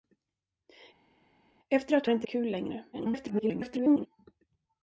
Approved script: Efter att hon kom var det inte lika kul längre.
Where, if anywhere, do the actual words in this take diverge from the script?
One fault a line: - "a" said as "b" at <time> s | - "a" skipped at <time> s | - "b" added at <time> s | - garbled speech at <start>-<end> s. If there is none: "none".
- "hon kom var" skipped at 2.1 s
- "lika" skipped at 2.3 s
- garbled speech at 2.9-4.1 s